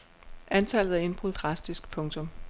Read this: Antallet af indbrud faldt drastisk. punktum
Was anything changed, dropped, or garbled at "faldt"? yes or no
yes